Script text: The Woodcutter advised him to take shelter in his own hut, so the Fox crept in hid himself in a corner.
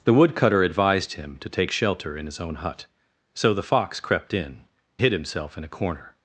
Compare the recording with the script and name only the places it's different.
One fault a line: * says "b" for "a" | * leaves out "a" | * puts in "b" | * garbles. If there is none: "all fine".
all fine